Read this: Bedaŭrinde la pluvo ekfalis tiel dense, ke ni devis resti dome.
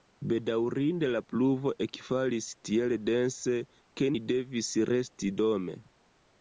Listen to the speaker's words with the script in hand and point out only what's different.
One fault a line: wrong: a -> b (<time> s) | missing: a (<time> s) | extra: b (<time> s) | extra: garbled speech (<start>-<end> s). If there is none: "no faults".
no faults